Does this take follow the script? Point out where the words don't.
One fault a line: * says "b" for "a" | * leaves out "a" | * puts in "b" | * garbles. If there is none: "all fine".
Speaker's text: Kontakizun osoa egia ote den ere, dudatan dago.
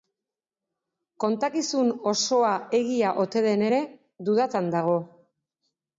all fine